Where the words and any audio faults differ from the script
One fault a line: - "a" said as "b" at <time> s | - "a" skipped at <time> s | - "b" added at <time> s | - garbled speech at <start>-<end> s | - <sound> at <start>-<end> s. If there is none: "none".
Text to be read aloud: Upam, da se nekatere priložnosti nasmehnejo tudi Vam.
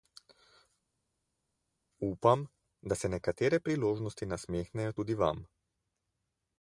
none